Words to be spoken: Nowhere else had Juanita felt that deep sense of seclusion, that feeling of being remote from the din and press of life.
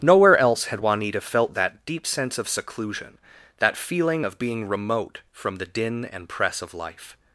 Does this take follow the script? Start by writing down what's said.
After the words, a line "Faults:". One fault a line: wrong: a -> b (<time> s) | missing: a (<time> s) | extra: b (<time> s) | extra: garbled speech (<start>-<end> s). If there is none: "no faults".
Nowhere else had Juanita felt that deep sense of seclusion, that feeling of being remote from the din and press of life.
Faults:
no faults